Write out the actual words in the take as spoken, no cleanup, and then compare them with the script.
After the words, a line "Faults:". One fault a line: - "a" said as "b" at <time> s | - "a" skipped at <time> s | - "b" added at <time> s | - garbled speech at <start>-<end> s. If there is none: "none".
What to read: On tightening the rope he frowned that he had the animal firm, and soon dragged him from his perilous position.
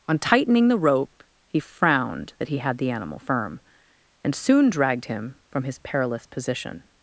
On tightening the rope he frowned that he had the animal firm, and soon dragged him from his perilous position.
Faults:
none